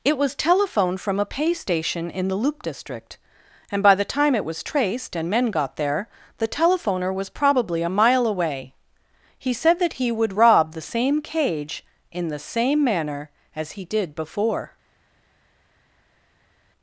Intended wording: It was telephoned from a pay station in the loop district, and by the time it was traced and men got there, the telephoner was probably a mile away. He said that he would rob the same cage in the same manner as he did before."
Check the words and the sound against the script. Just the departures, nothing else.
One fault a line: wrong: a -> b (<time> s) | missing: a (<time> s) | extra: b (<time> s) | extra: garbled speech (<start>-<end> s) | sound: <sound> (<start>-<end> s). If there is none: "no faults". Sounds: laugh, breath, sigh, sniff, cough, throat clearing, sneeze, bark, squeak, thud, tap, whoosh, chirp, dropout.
no faults